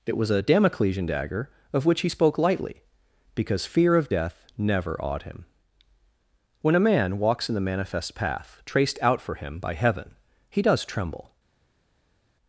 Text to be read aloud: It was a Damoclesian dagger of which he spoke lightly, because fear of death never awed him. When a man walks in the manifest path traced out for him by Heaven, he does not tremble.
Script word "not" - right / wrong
wrong